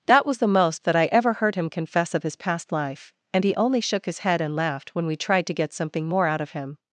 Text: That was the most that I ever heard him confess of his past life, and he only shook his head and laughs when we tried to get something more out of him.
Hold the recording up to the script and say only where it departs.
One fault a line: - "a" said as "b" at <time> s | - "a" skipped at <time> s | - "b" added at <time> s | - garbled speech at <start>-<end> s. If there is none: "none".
- "laughs" said as "laughed" at 4.5 s